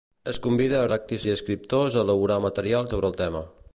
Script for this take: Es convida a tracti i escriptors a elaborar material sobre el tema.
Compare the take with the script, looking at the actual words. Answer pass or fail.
pass